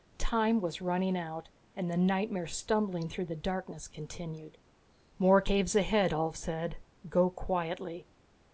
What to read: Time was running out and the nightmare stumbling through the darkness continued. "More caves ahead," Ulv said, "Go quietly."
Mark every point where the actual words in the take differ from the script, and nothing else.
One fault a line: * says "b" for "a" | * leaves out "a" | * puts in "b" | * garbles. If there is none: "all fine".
all fine